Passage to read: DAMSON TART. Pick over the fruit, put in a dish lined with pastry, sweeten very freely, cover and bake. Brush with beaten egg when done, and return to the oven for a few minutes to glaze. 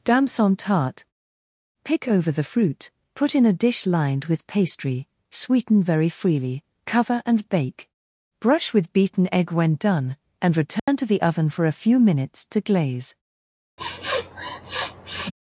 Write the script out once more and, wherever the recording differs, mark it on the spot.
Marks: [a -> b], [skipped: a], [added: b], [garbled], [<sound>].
DAMSON TART. Pick over the fruit, put in a dish lined with pastry, sweeten very freely, cover and bake. Brush with beaten egg when done, and return [dropout] to the oven for a few minutes to glaze. [sniff]